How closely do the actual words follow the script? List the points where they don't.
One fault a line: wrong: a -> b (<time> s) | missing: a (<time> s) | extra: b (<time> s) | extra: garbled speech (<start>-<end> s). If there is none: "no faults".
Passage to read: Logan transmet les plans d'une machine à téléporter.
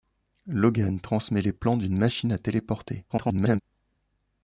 extra: garbled speech (3.1-3.6 s)